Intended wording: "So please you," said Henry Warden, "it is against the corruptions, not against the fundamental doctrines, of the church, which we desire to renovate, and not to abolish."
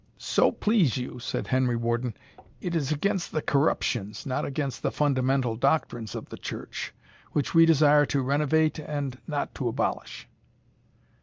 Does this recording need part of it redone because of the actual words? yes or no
no